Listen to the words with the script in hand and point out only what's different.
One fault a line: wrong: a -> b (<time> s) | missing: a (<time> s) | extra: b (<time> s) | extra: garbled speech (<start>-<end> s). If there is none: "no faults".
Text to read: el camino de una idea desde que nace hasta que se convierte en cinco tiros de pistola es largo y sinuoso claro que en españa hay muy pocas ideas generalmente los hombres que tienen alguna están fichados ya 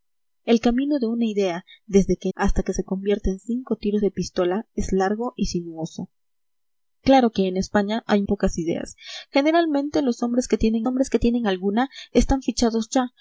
missing: nace (2.3 s)
missing: muy (8.2 s)
extra: hombres que tienen (10.9 s)